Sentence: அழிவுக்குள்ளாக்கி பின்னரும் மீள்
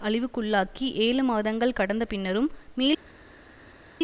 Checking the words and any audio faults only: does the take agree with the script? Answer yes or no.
no